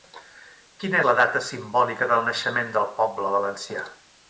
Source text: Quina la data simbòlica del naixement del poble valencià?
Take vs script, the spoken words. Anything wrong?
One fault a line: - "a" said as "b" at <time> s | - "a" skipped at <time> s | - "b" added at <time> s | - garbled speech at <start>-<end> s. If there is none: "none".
none